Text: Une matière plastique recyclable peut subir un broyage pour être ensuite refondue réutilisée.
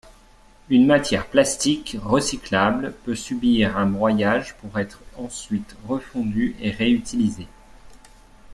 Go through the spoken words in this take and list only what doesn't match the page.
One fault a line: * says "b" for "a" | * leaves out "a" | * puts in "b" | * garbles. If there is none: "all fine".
* puts in "et"